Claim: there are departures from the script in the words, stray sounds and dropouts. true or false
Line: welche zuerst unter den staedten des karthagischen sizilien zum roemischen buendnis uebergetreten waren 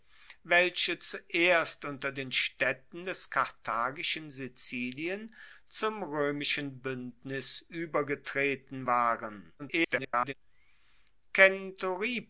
true